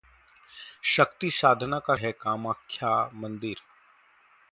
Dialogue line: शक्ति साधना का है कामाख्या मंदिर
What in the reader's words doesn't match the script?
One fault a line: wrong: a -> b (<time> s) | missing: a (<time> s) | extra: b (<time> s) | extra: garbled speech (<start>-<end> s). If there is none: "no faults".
no faults